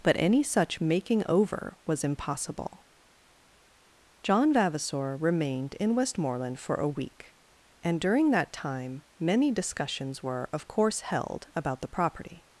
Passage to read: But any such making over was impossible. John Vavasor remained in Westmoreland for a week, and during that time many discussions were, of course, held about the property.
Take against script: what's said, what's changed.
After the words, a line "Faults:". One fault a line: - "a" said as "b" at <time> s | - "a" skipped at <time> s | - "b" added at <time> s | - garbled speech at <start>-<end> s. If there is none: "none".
But any such making over was impossible. John Vavasor remained in Westmoreland for a week, and during that time many discussions were, of course, held about the property.
Faults:
none